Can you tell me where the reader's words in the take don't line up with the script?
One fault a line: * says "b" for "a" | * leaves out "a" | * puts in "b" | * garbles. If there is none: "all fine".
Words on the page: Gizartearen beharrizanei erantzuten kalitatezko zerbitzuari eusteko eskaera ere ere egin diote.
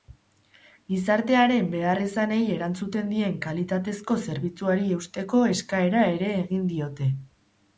* puts in "dien"
* leaves out "ere"